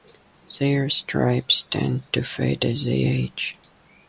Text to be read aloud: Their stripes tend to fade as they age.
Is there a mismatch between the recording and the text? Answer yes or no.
no